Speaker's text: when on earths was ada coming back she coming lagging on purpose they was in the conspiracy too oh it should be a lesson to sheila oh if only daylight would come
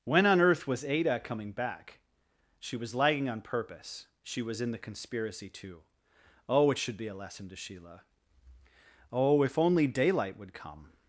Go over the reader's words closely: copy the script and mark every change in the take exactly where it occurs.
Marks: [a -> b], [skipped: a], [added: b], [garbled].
when on [earths -> earth] was ada coming back she [coming -> was] lagging on purpose [they -> she] was in the conspiracy too oh it should be a lesson to sheila oh if only daylight would come